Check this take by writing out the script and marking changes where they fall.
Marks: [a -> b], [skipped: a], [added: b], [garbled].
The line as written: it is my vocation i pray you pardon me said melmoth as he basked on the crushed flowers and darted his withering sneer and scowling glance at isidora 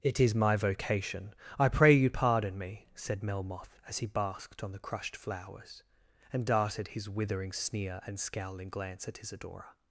it is my vocation i pray you pardon me said melmoth as he basked on the crushed flowers and darted his withering sneer and scowling glance at isidora